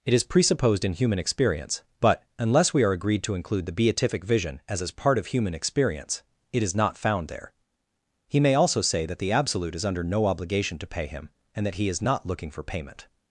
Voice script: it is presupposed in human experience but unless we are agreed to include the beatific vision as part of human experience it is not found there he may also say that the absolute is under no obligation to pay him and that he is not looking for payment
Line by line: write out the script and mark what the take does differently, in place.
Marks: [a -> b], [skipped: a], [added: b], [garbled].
it is presupposed in human experience but unless we are agreed to include the beatific vision as [added: as] part of human experience it is not found there he may also say that the absolute is under no obligation to pay him and that he is not looking for payment